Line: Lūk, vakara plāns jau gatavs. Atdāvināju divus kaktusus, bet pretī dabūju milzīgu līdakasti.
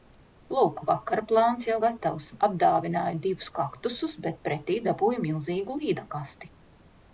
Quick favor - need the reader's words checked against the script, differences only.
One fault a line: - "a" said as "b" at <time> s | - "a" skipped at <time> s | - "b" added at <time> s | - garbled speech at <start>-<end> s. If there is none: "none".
none